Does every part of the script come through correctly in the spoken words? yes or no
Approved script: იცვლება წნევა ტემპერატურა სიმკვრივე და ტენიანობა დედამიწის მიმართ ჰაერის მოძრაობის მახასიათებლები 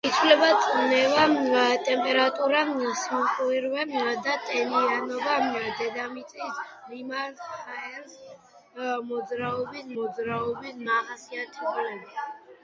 no